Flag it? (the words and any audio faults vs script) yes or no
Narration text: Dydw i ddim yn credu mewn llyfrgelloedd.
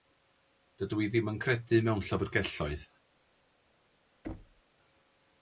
yes